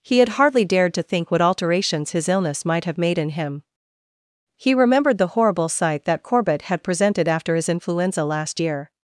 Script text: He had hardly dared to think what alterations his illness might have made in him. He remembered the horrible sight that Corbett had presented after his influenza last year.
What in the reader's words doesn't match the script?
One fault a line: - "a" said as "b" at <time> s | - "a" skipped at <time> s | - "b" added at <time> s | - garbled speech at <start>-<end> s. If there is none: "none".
none